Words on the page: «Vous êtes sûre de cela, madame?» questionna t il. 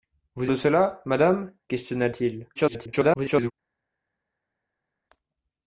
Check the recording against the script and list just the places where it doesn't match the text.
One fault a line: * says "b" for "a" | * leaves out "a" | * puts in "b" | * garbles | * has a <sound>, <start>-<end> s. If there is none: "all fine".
* leaves out "êtes sûre"
* garbles